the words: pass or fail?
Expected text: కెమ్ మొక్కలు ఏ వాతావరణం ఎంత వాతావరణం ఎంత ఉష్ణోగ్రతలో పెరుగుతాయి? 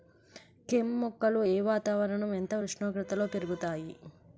fail